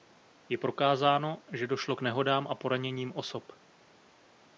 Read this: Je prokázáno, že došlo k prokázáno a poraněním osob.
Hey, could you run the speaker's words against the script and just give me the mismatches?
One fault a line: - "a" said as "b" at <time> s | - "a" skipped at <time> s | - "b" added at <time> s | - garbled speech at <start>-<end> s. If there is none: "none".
- "prokázáno" said as "nehodám" at 2.0 s